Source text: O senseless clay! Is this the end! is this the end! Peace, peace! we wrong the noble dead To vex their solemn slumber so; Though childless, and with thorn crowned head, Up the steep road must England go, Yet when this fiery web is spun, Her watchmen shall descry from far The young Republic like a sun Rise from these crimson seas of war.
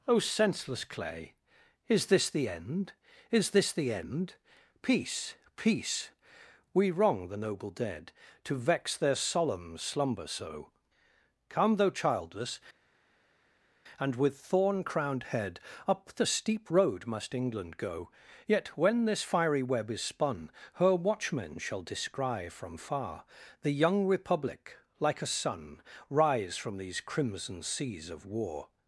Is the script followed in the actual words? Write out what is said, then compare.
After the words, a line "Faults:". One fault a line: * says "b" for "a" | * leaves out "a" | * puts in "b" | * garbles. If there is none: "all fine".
O senseless clay! Is this the end! is this the end! Peace, peace! we wrong the noble dead To vex their solemn slumber so; come Though childless, and with thorn crowned head, Up the steep road must England go, Yet when this fiery web is spun, Her watchmen shall descry from far The young Republic like a sun Rise from these crimson seas of war.
Faults:
* puts in "come"